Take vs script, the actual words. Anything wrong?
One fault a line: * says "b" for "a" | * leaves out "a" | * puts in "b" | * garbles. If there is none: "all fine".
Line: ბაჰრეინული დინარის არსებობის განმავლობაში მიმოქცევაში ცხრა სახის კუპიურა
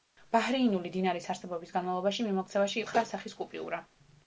all fine